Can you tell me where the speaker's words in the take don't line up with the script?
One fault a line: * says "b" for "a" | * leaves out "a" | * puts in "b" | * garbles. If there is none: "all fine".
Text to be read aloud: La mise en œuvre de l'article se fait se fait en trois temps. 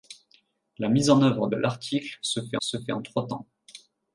all fine